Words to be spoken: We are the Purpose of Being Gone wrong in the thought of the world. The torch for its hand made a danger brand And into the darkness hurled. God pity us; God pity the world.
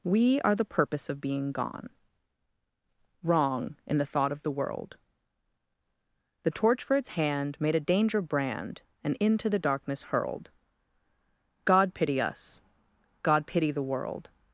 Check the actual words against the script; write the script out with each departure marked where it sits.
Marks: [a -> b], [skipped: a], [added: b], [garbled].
We are the Purpose of Being Gone wrong in the thought of the world. The torch for its hand made a danger brand And into the darkness hurled. God pity us; God pity the world.